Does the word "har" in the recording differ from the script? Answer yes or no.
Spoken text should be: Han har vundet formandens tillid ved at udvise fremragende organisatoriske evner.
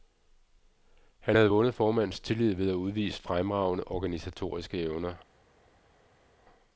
yes